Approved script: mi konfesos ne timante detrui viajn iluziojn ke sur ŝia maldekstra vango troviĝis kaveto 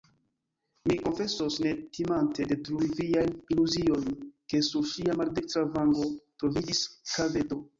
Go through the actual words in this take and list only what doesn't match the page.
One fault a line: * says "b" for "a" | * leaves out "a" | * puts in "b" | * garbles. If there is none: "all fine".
all fine